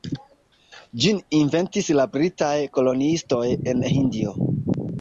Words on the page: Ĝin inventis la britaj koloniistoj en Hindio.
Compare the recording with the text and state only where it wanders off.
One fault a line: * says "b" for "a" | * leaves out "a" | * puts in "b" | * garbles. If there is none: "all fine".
all fine